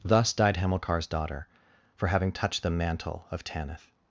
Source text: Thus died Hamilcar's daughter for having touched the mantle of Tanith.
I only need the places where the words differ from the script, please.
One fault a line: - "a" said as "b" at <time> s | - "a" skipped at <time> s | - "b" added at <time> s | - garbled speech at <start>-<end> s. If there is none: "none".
none